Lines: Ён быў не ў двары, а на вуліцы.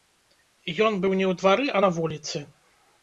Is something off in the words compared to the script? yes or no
no